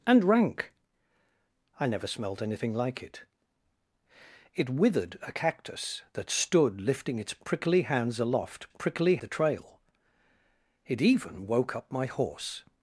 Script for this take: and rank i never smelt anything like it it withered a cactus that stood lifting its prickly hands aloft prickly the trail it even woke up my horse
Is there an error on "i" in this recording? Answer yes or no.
no